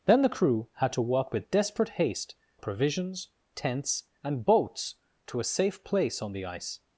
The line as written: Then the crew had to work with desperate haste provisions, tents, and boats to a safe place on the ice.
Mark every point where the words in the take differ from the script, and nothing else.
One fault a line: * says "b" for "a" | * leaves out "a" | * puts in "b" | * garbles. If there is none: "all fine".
all fine